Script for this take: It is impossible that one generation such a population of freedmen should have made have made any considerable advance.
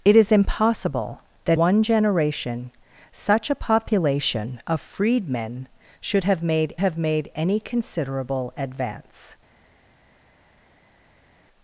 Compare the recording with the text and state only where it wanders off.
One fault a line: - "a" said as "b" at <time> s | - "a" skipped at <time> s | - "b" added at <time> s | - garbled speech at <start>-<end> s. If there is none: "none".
none